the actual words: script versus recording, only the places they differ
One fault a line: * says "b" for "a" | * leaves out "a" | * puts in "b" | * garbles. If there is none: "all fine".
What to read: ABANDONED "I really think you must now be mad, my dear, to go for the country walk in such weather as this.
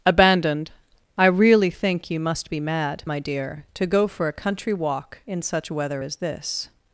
* leaves out "now"
* says "a" for "the"